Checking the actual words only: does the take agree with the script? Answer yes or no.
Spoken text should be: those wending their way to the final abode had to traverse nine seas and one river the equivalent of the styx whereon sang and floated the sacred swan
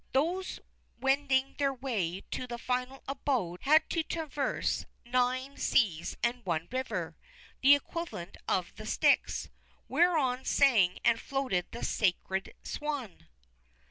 yes